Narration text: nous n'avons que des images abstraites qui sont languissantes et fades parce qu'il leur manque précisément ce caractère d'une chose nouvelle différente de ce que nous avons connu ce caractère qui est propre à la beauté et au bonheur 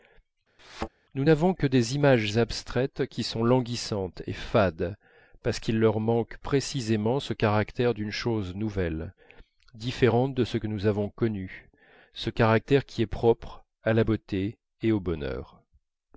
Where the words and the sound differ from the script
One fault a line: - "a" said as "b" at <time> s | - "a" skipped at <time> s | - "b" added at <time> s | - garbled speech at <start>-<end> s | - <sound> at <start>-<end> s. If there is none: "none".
- thud at 0.6-0.9 s